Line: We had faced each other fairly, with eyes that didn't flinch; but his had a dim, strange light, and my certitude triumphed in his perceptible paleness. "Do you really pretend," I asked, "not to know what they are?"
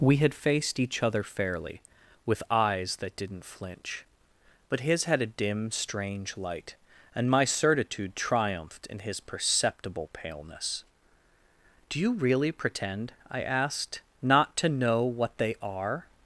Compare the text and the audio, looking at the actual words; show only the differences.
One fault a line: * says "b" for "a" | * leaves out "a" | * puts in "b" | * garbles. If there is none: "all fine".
all fine